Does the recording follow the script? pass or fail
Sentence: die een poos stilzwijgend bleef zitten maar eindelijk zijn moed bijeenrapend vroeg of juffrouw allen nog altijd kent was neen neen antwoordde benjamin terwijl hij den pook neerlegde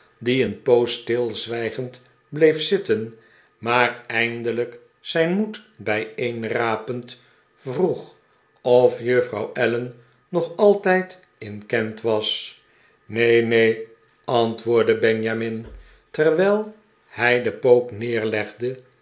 fail